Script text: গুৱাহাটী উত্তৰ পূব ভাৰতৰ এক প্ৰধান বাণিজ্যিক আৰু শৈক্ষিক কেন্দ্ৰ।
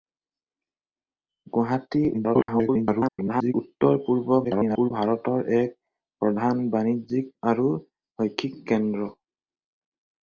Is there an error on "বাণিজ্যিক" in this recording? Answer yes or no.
no